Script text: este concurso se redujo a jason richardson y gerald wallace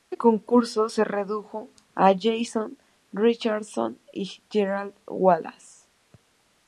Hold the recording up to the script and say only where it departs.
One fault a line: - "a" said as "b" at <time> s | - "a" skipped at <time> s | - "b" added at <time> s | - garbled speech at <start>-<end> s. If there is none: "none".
none